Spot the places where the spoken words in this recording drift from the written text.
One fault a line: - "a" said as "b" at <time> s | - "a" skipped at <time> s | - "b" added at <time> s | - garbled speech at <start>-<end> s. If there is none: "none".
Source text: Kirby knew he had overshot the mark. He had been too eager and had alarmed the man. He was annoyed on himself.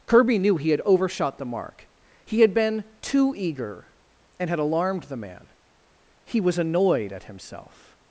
- "on" said as "at" at 7.1 s